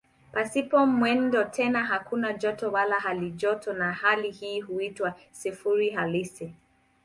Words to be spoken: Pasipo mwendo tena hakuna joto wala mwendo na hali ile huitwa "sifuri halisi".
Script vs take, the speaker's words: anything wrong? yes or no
yes